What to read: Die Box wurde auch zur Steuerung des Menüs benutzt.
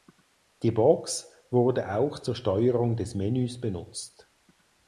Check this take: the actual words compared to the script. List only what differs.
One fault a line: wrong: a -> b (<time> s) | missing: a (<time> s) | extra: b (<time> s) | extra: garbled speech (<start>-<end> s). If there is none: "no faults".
no faults